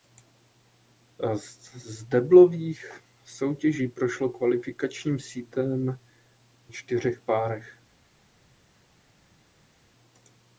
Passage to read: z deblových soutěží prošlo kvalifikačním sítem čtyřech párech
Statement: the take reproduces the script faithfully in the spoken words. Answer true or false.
true